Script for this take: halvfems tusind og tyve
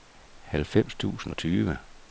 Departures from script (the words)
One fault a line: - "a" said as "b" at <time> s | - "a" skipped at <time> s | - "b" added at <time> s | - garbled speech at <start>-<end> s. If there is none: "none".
none